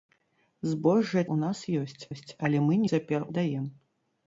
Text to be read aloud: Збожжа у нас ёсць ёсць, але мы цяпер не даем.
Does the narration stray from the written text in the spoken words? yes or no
no